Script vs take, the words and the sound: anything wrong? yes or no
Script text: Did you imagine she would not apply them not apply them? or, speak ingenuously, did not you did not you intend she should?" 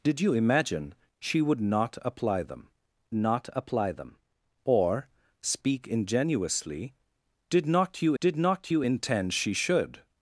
no